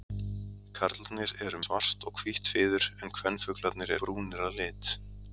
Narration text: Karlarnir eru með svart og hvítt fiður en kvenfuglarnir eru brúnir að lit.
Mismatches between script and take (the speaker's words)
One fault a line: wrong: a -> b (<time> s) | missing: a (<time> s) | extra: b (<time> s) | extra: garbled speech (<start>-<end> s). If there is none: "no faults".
missing: með (1.6 s)
missing: eru (3.9 s)